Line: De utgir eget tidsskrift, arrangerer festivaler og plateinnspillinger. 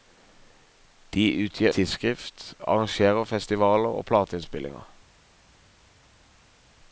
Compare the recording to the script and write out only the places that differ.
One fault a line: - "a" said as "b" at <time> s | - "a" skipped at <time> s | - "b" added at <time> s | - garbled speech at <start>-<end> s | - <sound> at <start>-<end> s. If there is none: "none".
- "eget" skipped at 1.7 s